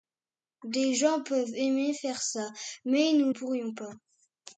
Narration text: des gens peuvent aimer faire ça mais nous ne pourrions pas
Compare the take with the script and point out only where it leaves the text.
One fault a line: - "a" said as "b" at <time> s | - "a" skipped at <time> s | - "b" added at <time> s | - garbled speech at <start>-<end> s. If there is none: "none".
- "ne" skipped at 3.3 s